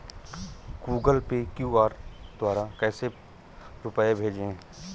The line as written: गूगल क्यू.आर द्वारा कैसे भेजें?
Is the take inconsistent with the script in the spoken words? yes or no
yes